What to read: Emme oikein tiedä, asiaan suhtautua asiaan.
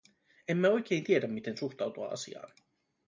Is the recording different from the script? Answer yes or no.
yes